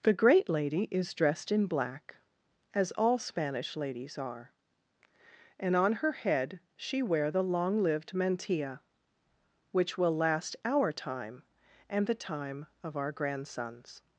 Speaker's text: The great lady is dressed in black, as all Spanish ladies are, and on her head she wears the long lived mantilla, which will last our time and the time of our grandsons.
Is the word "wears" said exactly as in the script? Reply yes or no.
no